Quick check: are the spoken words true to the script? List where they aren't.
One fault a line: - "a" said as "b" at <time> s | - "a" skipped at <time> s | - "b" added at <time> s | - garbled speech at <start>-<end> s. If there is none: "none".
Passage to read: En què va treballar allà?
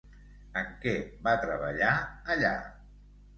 none